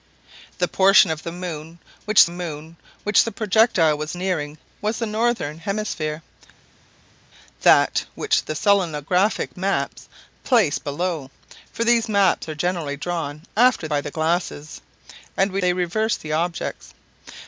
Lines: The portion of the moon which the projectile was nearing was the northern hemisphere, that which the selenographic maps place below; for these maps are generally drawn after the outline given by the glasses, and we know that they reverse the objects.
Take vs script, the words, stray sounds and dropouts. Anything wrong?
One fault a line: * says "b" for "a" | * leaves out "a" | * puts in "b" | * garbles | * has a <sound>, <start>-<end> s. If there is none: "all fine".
* puts in "moon which"
* leaves out "the outline given"
* leaves out "know that"